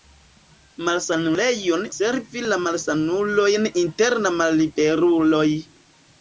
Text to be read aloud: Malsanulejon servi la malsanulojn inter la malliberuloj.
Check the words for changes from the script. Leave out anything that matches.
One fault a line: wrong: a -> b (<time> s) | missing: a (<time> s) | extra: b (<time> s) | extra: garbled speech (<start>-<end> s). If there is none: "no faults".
no faults